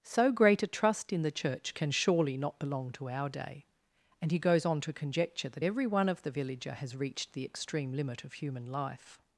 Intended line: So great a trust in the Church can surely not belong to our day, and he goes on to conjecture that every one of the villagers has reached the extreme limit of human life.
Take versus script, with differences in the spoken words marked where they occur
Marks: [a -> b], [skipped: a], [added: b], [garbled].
So great a trust in the Church can surely not belong to our day, and he goes on to conjecture that every one of the [villagers -> villager] has reached the extreme limit of human life.